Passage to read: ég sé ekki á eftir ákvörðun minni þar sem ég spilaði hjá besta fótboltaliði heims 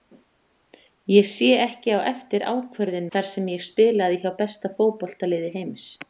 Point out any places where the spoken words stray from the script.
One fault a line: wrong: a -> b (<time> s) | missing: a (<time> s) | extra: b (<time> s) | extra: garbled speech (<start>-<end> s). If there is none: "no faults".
missing: minni (3.1 s)